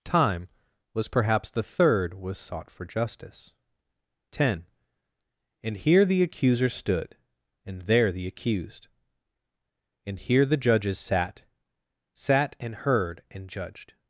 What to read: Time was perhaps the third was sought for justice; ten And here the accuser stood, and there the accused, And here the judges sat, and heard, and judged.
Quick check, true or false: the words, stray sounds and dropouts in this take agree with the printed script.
false